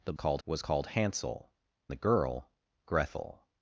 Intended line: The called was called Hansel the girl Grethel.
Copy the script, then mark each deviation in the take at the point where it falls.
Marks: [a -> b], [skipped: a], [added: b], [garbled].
The called was called Hansel the girl Grethel.